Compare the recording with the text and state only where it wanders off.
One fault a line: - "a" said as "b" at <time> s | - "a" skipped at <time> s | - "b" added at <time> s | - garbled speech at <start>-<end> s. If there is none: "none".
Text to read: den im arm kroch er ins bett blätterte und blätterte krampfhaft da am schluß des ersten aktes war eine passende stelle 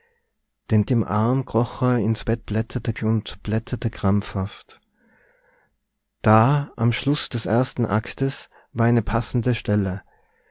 none